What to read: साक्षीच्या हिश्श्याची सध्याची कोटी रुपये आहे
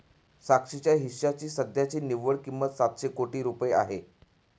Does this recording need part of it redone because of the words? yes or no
yes